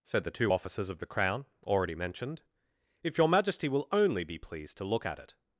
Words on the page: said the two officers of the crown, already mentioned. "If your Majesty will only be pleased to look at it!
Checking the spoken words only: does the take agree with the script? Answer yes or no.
yes